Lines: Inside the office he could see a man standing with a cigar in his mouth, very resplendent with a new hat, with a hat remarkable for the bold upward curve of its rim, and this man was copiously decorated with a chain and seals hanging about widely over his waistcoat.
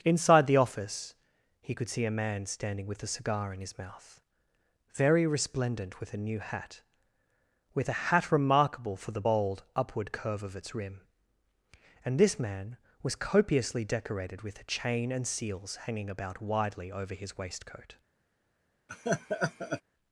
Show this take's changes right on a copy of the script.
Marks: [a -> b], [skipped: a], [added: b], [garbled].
Inside the office he could see a man standing with a cigar in his mouth, very resplendent with a new hat, with a hat remarkable for the bold upward curve of its rim, and this man was copiously decorated with a chain and seals hanging about widely over his waistcoat.